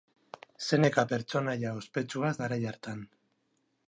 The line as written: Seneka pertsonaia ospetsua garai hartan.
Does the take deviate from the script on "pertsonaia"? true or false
false